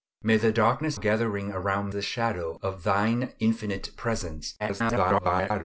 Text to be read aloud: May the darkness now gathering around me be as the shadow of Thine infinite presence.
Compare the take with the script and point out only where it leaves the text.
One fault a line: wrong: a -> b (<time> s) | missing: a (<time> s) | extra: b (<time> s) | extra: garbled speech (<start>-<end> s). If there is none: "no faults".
missing: now (1.0 s)
missing: me be as (1.9 s)
extra: garbled speech (4.6-5.6 s)